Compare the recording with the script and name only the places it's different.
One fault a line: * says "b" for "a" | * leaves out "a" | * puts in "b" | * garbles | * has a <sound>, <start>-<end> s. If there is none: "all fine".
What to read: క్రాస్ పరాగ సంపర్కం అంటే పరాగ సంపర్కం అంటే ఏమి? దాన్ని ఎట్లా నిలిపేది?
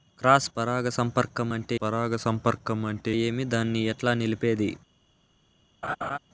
* has a laugh, 5.8-6.2 s